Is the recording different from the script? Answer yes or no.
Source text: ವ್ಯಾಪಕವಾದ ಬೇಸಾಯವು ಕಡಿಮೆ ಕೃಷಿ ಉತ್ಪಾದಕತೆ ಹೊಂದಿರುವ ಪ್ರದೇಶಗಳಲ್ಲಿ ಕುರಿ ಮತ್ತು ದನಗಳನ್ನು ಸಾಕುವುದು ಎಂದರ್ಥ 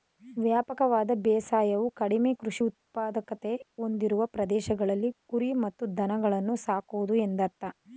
no